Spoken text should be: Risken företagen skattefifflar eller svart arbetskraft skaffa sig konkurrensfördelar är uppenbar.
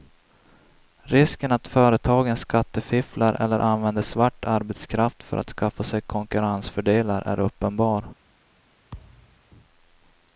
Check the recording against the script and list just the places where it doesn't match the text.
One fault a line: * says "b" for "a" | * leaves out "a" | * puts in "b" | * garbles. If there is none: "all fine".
* puts in "att"
* puts in "använder"
* puts in "för att"